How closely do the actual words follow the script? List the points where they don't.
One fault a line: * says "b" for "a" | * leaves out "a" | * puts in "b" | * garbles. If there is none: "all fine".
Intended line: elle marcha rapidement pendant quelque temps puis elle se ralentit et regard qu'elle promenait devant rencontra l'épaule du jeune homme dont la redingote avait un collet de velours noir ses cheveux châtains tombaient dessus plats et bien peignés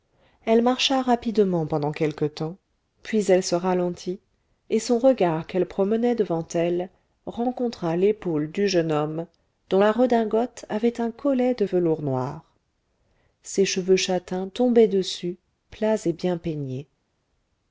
* puts in "son"
* puts in "elle"